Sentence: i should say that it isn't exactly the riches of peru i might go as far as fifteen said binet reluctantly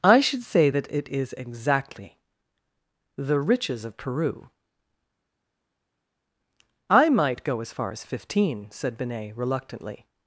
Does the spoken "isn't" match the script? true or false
false